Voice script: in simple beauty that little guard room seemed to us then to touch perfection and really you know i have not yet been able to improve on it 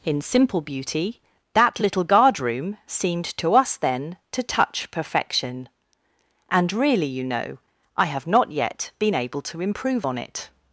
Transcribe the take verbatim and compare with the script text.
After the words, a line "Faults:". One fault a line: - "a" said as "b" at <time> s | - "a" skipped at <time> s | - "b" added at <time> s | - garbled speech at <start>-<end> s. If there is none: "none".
in simple beauty that little guard room seemed to us then to touch perfection and really you know i have not yet been able to improve on it
Faults:
none